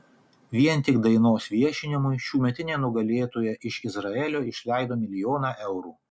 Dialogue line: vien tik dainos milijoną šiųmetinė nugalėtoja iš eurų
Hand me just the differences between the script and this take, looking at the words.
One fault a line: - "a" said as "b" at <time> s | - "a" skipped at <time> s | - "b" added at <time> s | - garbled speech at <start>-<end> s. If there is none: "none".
- "milijoną" said as "viešinimui" at 1.6 s
- "izraelio išleido milijoną" added at 3.9 s